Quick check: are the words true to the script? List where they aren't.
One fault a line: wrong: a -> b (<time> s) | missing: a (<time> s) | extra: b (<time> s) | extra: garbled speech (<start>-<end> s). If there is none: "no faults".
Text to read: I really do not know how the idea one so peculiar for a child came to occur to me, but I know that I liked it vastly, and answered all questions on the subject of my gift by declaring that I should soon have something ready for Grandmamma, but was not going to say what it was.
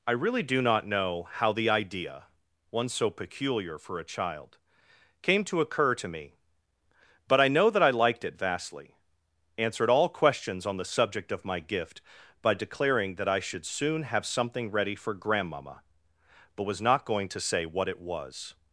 missing: and (8.9 s)